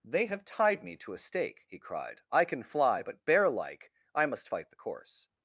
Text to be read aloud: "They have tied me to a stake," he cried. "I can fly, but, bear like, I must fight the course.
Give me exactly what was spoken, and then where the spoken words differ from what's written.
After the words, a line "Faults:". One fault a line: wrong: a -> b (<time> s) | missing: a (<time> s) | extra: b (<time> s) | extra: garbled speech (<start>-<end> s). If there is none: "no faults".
"They have tied me to a stake," he cried. "I can fly, but, bear like, I must fight the course.
Faults:
no faults